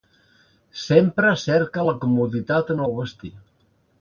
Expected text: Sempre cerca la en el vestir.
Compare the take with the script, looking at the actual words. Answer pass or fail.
fail